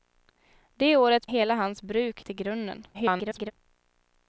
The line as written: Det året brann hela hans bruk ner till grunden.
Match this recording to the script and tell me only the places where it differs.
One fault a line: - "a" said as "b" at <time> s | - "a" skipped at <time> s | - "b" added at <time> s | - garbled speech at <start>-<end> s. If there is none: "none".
- "brann" skipped at 1.3 s
- "ner" skipped at 2.2 s
- garbled speech at 2.9-3.5 s